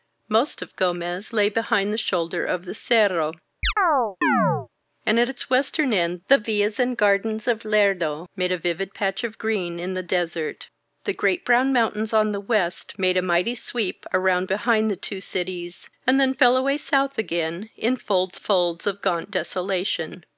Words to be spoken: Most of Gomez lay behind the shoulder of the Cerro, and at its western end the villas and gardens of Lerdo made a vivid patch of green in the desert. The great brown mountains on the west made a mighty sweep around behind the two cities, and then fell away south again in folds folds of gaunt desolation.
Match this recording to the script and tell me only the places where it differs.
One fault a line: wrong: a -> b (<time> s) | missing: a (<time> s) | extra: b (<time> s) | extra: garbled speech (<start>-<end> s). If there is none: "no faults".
no faults